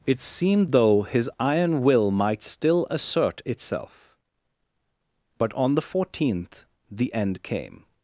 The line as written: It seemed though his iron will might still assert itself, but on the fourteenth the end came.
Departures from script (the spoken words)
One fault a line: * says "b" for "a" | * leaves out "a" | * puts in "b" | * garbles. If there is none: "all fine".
all fine